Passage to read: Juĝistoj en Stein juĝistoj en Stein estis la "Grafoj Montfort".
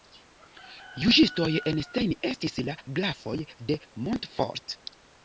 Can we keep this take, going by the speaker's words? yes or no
no